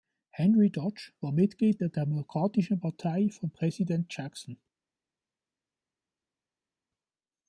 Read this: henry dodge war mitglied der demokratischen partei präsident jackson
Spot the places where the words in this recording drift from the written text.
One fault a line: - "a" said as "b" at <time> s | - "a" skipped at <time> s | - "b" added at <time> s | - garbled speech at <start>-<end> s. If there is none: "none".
- "von" added at 3.3 s